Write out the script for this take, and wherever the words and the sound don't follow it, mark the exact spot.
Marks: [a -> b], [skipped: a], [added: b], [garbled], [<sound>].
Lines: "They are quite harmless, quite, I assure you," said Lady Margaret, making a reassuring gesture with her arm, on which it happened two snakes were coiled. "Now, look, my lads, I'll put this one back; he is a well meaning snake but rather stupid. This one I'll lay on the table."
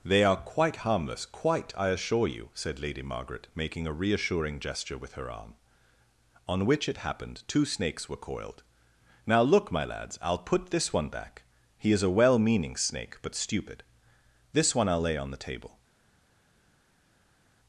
"They are quite harmless, quite, I assure you," said Lady Margaret, making a reassuring gesture with her arm, on which it happened two snakes were coiled. "Now, look, my lads, I'll put this one back; he is a well meaning snake but [skipped: rather] stupid. This one I'll lay on the table."